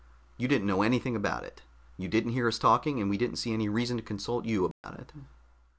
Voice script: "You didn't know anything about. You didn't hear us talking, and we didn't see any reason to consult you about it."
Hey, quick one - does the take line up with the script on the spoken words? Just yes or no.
no